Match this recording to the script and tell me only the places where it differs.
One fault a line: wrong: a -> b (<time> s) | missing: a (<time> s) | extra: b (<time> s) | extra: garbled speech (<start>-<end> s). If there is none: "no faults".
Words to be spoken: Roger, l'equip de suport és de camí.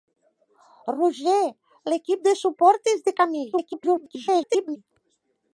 extra: garbled speech (3.5-4.8 s)